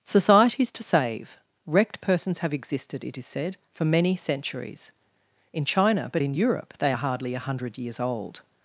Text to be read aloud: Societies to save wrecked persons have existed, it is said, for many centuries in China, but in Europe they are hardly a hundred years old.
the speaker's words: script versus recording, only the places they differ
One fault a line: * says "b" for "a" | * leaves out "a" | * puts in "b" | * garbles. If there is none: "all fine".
all fine